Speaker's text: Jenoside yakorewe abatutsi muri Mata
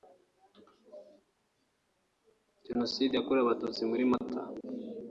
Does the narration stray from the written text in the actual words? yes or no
no